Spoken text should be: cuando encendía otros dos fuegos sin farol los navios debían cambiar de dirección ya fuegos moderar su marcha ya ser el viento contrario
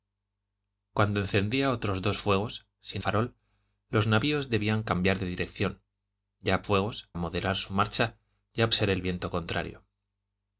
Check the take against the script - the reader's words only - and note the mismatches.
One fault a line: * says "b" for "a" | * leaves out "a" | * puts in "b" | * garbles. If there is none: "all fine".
all fine